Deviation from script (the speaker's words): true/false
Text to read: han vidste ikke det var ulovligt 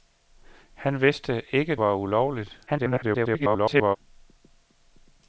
true